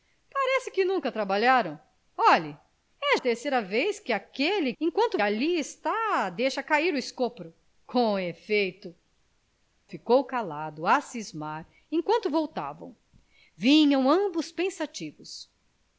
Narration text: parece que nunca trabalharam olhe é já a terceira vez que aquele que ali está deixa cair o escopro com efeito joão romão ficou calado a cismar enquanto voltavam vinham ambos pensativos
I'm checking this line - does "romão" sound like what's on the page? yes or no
no